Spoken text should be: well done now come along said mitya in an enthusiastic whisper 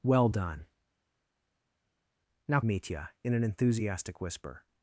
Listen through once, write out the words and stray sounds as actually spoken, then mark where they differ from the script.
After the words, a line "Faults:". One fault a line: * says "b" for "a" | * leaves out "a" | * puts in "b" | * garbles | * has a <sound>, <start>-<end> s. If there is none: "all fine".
well done now mitya in an enthusiastic whisper
Faults:
* leaves out "come along said"